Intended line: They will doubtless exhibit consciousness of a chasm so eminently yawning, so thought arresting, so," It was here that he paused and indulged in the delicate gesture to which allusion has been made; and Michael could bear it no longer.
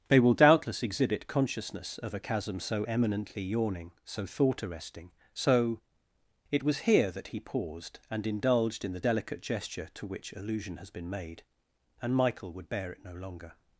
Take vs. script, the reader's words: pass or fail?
fail